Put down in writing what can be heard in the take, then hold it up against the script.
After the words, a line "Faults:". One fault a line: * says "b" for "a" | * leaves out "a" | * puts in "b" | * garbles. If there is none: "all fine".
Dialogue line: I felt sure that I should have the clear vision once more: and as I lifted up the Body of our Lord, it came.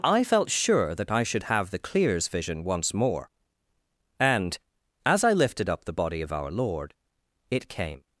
I felt sure that I should have the clears vision once more: and as I lifted up the Body of our Lord, it came.
Faults:
* says "clears" for "clear"